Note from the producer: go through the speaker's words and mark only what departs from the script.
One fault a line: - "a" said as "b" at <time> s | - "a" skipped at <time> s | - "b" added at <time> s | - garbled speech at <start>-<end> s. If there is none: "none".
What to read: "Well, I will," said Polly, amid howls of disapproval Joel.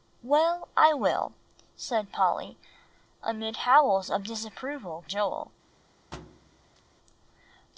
none